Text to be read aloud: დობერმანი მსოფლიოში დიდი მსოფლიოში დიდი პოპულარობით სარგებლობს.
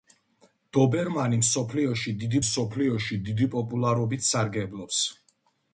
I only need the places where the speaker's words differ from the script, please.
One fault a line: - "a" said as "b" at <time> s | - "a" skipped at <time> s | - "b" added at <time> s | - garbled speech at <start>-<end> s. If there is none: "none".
none